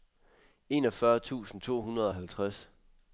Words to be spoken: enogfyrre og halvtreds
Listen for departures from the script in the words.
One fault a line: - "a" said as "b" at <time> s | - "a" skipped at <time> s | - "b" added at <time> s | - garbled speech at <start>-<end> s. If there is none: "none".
- "tusind to hundrede" added at 1.2 s